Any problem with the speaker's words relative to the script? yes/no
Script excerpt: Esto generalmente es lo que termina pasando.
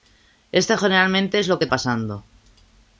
yes